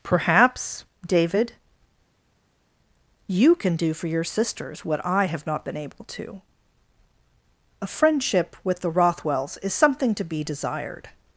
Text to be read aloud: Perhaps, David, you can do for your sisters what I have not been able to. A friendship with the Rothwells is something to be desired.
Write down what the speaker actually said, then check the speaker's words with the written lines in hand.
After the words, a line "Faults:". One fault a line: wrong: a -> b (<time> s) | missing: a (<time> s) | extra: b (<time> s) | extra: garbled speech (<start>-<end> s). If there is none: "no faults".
Perhaps, David, you can do for your sisters what I have not been able to. A friendship with the Rothwells is something to be desired.
Faults:
no faults